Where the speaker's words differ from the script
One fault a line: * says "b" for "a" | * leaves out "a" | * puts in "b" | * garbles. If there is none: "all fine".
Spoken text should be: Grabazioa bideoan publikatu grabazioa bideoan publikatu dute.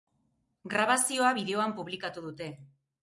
* leaves out "grabazioa bideoan publikatu"